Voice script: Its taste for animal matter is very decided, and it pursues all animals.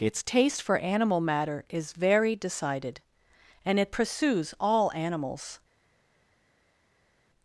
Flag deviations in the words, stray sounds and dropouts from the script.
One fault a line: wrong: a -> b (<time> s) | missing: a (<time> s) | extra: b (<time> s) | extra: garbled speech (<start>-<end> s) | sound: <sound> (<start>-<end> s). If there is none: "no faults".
no faults